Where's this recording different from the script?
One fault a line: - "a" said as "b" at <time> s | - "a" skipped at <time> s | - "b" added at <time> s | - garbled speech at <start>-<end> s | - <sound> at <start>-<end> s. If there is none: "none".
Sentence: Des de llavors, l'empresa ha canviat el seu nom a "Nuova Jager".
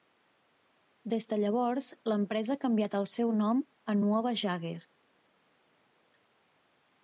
none